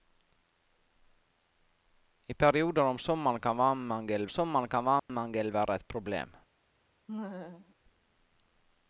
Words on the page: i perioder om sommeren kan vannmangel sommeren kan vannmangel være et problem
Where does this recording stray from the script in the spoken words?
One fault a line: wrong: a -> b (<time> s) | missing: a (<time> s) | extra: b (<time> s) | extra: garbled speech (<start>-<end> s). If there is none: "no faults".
no faults